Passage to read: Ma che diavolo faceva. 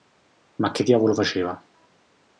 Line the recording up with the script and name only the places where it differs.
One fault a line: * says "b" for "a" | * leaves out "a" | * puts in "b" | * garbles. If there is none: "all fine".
all fine